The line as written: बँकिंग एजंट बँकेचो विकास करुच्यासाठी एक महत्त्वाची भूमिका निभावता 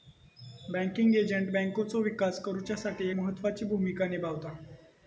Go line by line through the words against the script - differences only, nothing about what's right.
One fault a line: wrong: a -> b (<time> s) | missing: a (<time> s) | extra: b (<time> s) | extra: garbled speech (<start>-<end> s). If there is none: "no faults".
missing: एक (3.1 s)